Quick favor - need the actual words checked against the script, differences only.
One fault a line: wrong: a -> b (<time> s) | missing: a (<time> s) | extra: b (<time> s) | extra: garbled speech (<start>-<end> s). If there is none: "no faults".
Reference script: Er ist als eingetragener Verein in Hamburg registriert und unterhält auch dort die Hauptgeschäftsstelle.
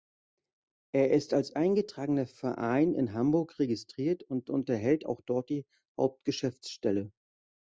no faults